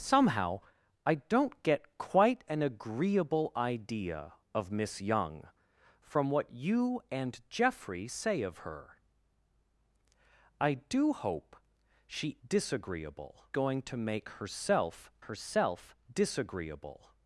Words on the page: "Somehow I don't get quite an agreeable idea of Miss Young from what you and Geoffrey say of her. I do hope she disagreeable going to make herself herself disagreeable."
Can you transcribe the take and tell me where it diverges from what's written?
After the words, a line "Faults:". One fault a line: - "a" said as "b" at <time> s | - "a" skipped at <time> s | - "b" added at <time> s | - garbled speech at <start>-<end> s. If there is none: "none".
"Somehow I don't get quite an agreeable idea of Miss Young from what you and Geoffrey say of her. I do hope she disagreeable going to make herself herself disagreeable."
Faults:
none